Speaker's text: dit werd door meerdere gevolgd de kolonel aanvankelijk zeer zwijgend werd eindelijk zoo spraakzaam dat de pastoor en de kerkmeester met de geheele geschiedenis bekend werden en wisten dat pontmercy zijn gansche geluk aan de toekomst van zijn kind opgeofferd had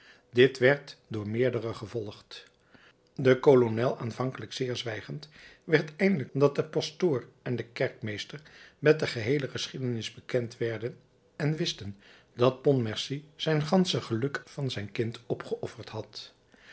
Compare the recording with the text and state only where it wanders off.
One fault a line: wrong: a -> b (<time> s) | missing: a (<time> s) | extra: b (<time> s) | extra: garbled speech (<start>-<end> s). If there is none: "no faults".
missing: zoo spraakzaam (6.3 s)
missing: aan de toekomst (14.4 s)